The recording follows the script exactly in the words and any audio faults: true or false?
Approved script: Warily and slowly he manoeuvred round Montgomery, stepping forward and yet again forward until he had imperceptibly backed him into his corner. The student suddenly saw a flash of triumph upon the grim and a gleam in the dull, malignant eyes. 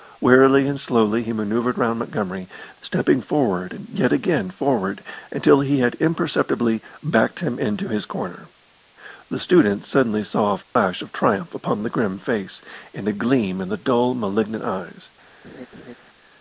false